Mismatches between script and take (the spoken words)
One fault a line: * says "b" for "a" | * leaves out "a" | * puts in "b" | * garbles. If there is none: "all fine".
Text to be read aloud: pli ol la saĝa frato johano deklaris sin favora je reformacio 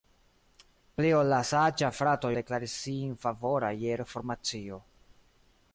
* leaves out "johano"